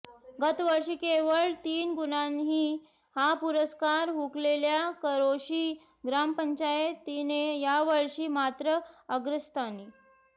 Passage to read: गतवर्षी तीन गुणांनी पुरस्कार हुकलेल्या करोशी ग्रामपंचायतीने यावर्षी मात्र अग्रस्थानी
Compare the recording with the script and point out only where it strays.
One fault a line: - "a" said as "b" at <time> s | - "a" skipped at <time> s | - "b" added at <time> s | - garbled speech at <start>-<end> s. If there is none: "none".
- "केवळ" added at 0.9 s
- "हा" added at 3.1 s